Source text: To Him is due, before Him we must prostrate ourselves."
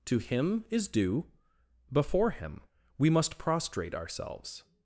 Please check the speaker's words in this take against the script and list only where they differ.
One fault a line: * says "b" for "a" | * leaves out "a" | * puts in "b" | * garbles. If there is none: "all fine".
all fine